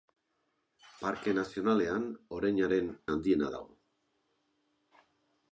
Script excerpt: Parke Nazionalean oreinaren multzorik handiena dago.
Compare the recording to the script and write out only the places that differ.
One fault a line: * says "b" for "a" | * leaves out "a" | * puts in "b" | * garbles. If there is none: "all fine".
* leaves out "multzorik"